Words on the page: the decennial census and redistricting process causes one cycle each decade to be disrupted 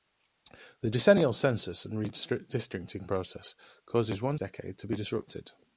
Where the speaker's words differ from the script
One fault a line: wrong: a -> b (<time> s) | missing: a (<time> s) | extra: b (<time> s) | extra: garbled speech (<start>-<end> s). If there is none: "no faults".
missing: cycle each (4.4 s)